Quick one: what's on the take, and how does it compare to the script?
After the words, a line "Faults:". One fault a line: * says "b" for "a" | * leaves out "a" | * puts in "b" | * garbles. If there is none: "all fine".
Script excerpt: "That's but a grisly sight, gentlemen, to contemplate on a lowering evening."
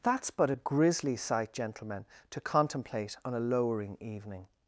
"That's but a grisly sight, gentlemen, to contemplate on a lowering evening."
Faults:
all fine